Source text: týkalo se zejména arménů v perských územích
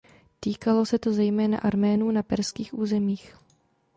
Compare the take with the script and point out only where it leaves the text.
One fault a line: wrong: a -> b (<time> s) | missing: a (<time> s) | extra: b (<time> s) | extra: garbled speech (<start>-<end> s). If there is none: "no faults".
extra: to (1.0 s)
wrong: v -> na (2.1 s)